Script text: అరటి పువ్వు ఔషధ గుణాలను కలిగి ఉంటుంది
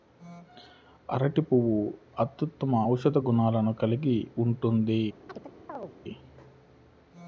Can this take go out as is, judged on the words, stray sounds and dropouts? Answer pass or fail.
fail